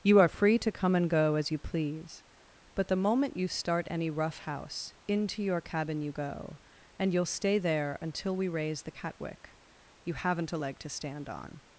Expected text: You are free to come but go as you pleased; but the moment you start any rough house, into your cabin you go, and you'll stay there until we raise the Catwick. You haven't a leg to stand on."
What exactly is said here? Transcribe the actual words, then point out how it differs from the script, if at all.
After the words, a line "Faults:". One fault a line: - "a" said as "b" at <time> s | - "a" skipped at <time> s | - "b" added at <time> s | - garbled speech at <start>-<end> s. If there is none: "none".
You are free to come and go as you please; but the moment you start any rough house, into your cabin you go, and you'll stay there until we raise the Catwick. You haven't a leg to stand on."
Faults:
- "but" said as "and" at 0.9 s
- "pleased" said as "please" at 1.6 s